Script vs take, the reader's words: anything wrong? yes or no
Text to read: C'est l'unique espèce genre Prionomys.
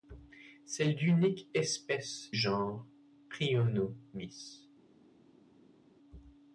no